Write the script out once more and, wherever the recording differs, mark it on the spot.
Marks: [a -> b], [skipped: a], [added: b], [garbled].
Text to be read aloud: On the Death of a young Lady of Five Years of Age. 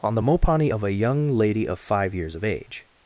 On the [Death -> Mopani] of a young Lady of Five Years of Age.